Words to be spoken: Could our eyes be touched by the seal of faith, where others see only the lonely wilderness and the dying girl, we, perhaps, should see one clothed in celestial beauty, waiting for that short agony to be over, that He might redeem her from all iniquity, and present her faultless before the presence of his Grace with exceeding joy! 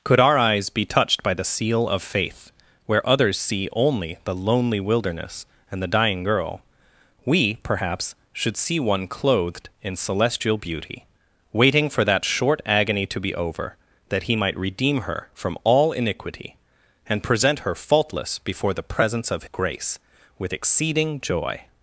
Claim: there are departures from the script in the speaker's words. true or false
true